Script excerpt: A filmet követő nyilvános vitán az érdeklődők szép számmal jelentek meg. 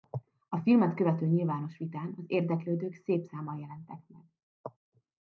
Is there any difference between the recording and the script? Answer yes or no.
no